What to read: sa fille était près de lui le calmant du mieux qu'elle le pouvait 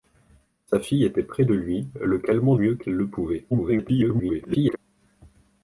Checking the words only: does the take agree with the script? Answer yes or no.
no